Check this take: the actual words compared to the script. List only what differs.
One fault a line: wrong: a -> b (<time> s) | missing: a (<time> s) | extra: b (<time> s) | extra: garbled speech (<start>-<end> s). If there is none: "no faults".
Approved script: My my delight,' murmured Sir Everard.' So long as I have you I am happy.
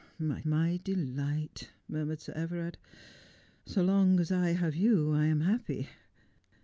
no faults